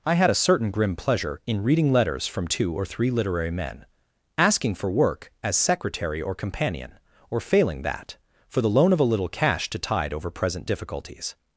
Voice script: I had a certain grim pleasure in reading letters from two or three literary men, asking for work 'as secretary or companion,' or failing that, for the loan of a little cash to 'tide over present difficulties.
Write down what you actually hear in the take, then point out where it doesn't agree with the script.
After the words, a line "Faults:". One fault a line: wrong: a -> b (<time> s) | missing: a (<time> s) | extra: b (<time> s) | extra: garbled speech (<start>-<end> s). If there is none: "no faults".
I had a certain grim pleasure in reading letters from two or three literary men, asking for work 'as secretary or companion,' or failing that, for the loan of a little cash to 'tide over present difficulties.
Faults:
no faults